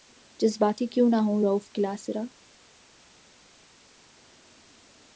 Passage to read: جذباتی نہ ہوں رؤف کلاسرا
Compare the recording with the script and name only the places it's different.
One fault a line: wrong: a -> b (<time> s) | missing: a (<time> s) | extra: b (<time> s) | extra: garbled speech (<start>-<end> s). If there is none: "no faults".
extra: کیوں (0.9 s)